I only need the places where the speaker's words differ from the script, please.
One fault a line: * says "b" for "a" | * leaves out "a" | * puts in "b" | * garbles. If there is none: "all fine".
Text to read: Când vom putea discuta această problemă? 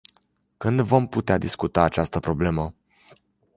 all fine